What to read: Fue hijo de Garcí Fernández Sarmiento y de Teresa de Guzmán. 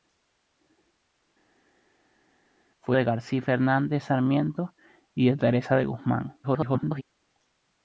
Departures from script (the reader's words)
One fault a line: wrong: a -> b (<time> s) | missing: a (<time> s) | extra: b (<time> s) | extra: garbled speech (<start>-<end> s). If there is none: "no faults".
missing: hijo (3.0 s)
extra: garbled speech (6.4-7.0 s)